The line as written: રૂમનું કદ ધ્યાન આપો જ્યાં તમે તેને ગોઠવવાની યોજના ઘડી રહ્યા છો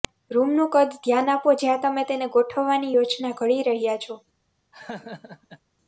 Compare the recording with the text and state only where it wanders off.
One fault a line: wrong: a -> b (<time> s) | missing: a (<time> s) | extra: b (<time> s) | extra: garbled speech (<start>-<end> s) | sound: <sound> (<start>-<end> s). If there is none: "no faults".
sound: laugh (4.7-5.6 s)